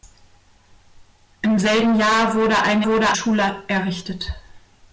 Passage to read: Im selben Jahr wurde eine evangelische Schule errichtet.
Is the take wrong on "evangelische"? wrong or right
wrong